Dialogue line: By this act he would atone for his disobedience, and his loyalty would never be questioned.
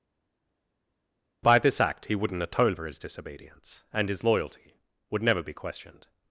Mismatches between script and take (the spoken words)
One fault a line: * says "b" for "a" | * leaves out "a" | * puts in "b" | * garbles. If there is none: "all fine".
* says "wouldn't" for "would"